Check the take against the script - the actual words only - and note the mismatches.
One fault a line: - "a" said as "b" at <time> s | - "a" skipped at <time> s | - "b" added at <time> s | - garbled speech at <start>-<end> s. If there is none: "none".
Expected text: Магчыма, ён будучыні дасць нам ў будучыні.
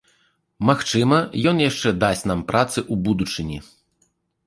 - "будучыні" said as "яшчэ" at 1.7 s
- "працы" added at 2.5 s